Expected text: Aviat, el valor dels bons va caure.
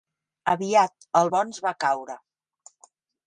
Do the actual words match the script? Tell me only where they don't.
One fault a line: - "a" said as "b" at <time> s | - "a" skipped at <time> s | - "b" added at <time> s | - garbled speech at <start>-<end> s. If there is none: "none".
- "valor dels" skipped at 1.3 s